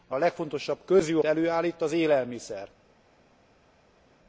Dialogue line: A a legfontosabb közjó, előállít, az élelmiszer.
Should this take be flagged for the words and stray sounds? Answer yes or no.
no